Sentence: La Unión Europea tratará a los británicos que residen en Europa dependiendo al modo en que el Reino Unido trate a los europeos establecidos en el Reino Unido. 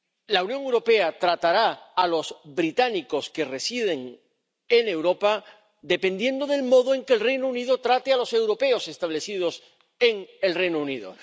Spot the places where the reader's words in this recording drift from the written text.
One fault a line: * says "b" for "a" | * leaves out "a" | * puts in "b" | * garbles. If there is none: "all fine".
* says "del" for "al"